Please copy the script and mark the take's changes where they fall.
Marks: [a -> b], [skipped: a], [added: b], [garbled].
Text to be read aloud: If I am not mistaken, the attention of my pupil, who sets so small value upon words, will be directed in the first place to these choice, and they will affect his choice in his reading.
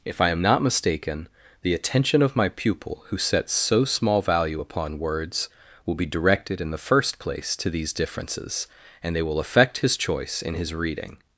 If I am not mistaken, the attention of my pupil, who sets so small value upon words, will be directed in the first place to these [choice, -> differences] and they will affect his choice in his reading.